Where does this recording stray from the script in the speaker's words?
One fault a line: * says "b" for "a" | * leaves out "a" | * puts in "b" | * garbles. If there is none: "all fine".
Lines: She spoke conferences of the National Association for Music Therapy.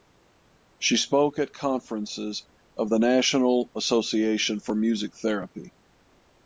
* puts in "at"